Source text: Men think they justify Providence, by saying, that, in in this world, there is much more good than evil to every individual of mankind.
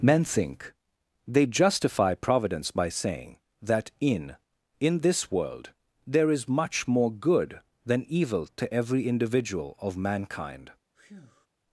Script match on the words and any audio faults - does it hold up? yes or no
no